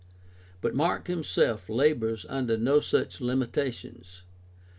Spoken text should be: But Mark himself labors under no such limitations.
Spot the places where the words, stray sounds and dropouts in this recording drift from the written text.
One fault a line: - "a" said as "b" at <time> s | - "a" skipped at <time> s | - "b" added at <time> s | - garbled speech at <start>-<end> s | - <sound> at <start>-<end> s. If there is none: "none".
none